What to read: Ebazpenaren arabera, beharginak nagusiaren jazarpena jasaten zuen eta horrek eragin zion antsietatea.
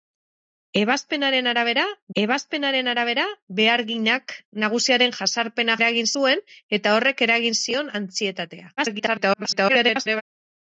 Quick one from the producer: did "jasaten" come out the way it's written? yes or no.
no